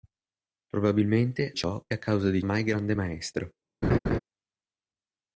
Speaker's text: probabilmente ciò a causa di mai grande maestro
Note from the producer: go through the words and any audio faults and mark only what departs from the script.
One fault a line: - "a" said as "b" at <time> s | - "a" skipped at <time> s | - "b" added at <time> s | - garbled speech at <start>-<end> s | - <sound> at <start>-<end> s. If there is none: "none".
- laugh at 3.8-4.2 s